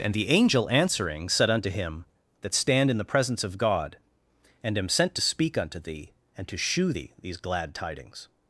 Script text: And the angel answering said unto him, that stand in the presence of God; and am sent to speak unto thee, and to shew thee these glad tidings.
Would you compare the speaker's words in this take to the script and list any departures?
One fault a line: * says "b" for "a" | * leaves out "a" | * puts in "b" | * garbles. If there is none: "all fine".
all fine